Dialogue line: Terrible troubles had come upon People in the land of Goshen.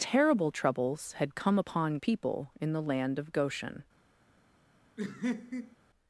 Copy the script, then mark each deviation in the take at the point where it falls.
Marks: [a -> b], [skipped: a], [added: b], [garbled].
Terrible troubles had come upon People in the land of Goshen.